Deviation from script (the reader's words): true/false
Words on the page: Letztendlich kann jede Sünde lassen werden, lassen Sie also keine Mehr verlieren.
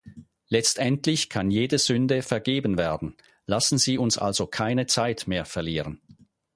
true